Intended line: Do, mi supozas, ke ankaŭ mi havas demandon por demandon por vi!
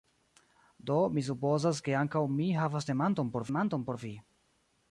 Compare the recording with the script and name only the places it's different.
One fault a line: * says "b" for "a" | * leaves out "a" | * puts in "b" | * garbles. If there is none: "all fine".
all fine